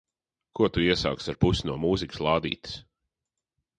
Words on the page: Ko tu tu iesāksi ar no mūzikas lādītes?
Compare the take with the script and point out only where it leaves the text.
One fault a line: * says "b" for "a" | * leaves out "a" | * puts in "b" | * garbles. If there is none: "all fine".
* leaves out "tu"
* puts in "pusi"